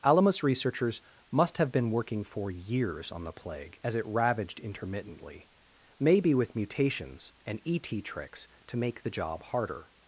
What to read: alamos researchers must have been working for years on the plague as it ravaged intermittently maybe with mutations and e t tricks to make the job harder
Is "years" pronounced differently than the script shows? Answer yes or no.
no